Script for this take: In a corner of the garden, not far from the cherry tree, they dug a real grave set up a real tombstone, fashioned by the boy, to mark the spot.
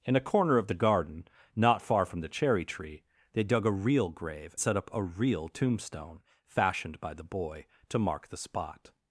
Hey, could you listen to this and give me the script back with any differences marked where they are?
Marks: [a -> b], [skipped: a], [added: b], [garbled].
In a corner of the garden, not far from the cherry tree, they dug a real grave set up a real tombstone, fashioned by the boy, to mark the spot.